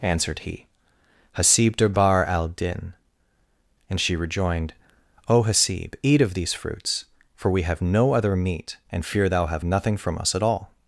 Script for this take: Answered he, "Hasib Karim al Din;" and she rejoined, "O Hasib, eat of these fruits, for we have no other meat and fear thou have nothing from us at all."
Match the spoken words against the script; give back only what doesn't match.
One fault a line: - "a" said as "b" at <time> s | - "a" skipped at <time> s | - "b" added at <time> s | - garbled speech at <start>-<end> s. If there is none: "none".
- "Karim" said as "Durbar" at 1.8 s